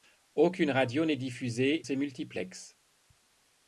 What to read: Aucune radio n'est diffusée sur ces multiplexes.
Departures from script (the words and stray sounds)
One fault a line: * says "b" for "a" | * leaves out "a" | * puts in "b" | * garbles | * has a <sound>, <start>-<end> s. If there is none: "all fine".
* leaves out "sur"